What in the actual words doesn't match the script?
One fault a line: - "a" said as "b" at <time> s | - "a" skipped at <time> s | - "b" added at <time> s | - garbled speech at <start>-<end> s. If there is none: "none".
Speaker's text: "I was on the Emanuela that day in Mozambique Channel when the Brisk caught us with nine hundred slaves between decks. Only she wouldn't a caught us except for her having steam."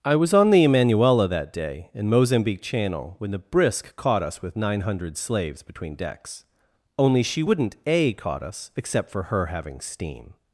none